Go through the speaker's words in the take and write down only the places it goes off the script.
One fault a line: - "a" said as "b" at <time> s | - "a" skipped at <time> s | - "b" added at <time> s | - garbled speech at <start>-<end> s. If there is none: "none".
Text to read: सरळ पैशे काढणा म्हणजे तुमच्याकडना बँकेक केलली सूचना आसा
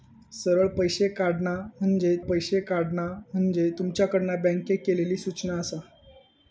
- "पैशे काढणा म्हणजे" added at 2.3 s